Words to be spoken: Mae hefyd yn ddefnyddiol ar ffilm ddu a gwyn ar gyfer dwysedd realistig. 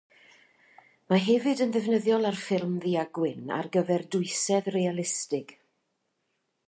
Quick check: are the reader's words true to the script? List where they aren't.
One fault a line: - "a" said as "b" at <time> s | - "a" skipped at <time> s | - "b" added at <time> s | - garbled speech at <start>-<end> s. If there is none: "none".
none